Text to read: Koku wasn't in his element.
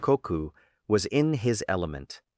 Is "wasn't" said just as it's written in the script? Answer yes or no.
no